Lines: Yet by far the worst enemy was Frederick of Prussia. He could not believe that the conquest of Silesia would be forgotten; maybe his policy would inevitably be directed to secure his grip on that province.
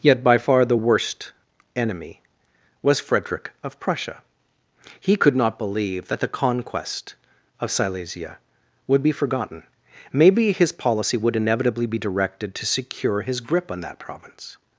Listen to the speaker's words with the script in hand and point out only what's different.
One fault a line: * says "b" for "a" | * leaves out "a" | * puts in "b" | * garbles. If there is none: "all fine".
all fine